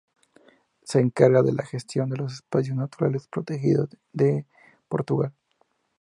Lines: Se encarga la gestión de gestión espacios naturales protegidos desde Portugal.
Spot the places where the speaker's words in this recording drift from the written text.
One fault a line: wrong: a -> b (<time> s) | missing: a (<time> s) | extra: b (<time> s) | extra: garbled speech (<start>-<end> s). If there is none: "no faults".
extra: de (1.4 s)
wrong: gestión -> los (2.2 s)
wrong: desde -> de (4.1 s)